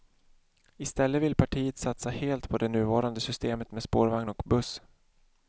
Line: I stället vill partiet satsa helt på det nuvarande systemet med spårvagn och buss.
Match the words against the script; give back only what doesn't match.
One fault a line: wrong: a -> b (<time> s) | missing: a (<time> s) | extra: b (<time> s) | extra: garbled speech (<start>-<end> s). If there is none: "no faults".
no faults